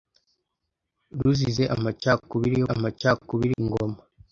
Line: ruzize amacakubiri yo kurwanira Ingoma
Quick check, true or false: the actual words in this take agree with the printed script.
false